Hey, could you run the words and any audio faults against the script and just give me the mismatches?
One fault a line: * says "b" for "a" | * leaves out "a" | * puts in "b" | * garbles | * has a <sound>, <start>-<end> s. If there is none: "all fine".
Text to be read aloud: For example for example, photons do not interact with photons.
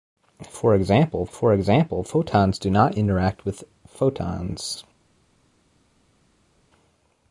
all fine